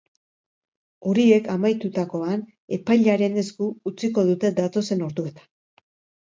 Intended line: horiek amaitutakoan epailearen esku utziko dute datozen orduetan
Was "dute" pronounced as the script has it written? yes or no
yes